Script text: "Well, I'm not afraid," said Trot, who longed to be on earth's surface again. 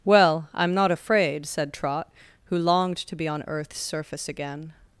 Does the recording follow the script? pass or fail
pass